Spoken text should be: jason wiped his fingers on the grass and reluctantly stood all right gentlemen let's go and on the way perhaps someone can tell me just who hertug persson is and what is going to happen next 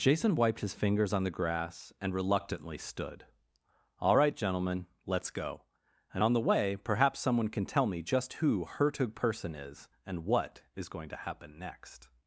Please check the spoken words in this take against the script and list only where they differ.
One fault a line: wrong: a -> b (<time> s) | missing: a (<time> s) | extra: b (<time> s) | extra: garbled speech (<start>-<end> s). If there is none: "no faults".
no faults